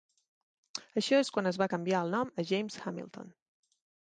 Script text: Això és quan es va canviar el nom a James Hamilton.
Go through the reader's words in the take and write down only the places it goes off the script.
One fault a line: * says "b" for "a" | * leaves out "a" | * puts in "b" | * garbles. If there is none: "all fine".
all fine